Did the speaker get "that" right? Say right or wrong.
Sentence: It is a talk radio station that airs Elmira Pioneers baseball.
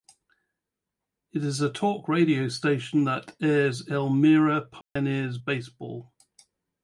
right